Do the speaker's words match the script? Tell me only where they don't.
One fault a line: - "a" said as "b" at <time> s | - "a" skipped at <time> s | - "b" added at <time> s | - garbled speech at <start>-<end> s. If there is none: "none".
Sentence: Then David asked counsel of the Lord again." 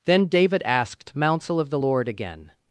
none